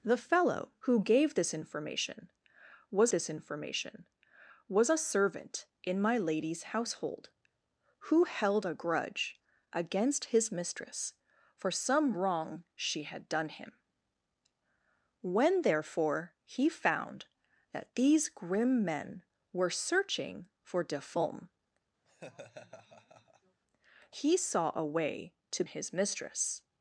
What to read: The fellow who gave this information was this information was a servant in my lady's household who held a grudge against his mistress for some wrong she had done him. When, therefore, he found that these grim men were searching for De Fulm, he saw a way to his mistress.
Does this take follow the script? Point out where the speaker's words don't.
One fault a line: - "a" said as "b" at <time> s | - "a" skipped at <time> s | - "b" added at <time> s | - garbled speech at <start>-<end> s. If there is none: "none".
none